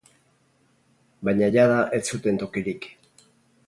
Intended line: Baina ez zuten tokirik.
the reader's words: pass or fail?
fail